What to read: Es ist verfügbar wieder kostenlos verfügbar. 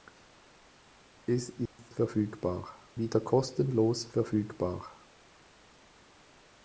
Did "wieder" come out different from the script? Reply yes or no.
no